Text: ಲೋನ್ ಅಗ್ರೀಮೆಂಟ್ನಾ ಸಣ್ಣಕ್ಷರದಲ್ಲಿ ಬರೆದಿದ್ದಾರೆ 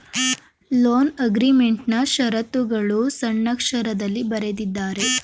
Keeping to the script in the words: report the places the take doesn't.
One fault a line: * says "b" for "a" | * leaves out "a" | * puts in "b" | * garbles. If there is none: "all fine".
* puts in "ಶರತ್ತುಗಳು"